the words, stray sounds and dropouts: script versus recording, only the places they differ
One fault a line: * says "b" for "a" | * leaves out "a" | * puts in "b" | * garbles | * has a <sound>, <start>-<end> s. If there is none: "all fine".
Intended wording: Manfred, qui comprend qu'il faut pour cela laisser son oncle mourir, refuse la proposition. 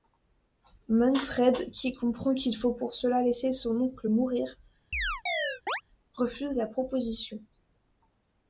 * has a chirp, 4.9-5.8 s